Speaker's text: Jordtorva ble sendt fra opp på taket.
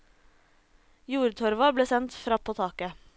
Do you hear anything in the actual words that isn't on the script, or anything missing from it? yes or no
no